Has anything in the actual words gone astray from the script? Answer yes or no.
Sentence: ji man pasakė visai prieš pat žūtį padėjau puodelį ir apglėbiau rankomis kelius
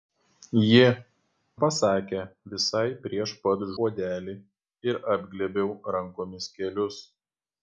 yes